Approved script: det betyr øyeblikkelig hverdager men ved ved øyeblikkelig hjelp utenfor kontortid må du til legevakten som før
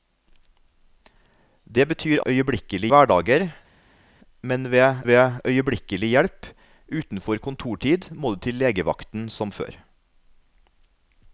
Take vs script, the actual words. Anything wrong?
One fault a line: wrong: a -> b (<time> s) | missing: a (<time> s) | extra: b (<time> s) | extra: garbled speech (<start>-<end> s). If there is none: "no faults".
no faults